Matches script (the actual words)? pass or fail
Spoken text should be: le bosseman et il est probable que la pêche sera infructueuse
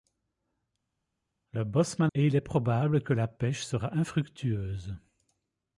pass